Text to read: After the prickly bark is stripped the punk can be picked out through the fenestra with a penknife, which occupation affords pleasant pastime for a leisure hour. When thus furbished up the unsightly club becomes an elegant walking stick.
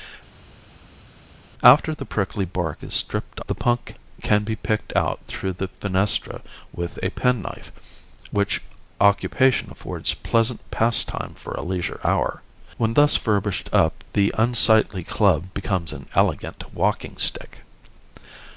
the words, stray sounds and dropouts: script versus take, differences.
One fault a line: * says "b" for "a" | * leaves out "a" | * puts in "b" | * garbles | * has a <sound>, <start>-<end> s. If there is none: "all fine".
all fine